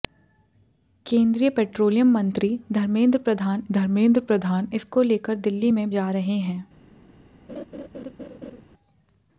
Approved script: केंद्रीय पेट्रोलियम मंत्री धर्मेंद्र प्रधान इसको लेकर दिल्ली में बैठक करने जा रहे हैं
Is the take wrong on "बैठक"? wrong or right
wrong